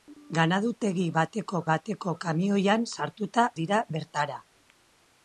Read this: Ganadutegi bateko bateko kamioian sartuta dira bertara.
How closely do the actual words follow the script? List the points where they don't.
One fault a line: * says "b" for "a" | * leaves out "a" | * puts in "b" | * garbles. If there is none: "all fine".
all fine